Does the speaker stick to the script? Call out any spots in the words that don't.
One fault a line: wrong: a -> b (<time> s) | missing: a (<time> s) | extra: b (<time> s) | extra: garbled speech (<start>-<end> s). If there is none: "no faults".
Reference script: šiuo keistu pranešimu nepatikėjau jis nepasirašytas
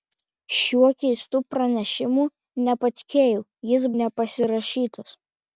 no faults